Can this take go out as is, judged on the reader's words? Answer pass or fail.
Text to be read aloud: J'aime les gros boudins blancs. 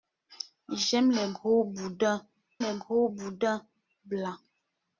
fail